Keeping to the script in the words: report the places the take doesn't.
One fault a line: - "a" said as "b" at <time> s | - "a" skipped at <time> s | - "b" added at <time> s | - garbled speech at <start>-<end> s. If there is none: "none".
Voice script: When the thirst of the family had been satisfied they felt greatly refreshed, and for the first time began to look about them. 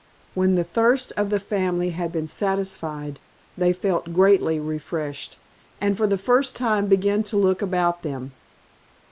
none